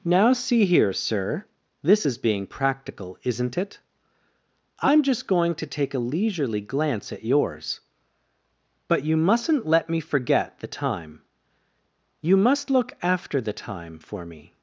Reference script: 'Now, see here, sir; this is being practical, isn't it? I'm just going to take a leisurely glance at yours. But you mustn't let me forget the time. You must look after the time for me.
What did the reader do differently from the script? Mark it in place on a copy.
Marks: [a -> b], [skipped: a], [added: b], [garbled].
'Now, see here, sir; this is being practical, isn't it? I'm just going to take a leisurely glance at yours. But you mustn't let me forget the time. You must look after the time for me.